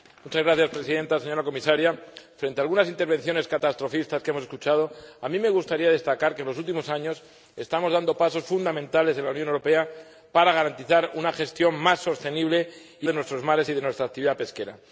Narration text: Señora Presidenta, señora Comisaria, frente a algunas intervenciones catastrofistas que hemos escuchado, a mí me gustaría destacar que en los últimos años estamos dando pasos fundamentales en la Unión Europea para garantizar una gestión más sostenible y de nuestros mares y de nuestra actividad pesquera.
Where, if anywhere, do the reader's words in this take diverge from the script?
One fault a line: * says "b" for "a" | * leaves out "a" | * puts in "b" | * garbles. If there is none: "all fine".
all fine